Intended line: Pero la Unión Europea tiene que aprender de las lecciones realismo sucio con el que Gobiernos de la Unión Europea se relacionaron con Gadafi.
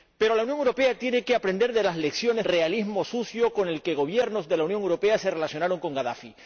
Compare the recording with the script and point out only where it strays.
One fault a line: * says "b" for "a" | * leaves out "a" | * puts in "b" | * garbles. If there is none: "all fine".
all fine